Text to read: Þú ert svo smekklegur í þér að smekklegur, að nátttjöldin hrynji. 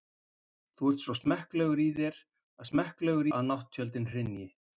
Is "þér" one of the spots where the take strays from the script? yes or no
no